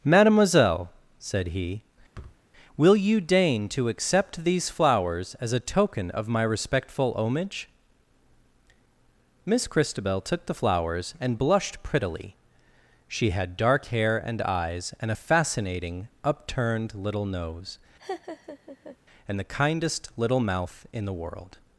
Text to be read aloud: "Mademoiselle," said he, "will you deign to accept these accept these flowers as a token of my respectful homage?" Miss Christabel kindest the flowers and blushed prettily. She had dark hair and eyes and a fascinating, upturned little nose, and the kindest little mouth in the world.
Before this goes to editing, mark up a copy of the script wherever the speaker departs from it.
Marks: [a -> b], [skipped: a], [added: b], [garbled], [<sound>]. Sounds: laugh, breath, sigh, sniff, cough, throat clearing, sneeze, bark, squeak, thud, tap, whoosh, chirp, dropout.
"Mademoiselle," said he, [thud] "will you deign to accept these [skipped: accept these] flowers as a token of my respectful homage?" Miss Christabel [kindest -> took] the flowers and blushed prettily. She had dark hair and eyes and a fascinating, upturned little nose, [laugh] and the kindest little mouth in the world.